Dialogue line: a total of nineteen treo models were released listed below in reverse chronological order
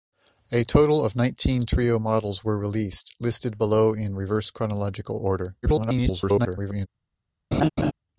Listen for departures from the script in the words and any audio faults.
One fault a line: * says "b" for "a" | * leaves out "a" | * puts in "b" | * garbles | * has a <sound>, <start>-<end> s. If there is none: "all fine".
* garbles
* has a laugh, 7.5-7.9 s